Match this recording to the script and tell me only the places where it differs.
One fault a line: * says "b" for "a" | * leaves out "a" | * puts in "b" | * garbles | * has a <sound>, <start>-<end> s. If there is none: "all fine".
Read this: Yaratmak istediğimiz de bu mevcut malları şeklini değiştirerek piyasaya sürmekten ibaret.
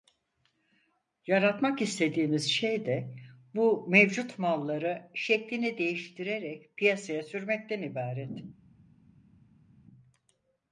* puts in "şey"